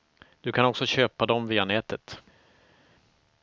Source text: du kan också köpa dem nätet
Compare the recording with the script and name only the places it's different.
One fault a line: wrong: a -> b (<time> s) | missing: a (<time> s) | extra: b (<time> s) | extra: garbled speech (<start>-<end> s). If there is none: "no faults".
extra: via (1.5 s)